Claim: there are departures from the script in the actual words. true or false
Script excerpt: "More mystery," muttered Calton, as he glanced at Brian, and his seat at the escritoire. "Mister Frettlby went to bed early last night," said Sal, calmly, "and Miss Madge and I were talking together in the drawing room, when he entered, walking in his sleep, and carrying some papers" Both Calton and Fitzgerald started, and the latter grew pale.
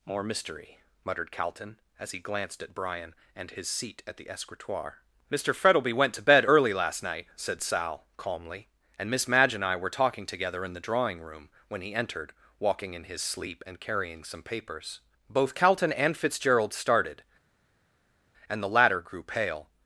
false